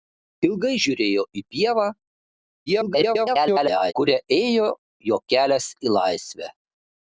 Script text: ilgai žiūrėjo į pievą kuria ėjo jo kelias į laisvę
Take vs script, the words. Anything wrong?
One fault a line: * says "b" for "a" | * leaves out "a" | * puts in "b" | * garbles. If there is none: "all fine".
* garbles